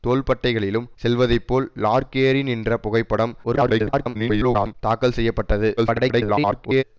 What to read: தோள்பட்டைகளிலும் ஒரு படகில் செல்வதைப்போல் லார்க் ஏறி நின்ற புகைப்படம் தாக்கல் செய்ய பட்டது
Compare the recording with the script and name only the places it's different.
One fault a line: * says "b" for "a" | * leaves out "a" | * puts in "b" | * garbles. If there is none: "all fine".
* leaves out "ஒரு படகில்"
* garbles
* garbles